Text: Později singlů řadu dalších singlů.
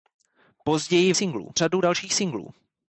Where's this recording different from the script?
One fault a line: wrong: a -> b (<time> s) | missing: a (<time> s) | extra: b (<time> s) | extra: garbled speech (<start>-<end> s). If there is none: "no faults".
no faults